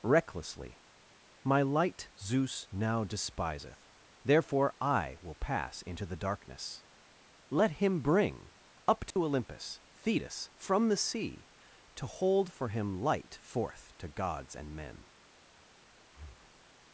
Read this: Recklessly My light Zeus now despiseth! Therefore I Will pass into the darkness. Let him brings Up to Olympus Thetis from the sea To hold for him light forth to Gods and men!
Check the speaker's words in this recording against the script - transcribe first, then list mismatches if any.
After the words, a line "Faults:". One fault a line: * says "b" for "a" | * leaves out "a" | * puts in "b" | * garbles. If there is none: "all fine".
Recklessly My light Zeus now despiseth! Therefore I Will pass into the darkness. Let him bring Up to Olympus Thetis from the sea To hold for him light forth to Gods and men!
Faults:
* says "bring" for "brings"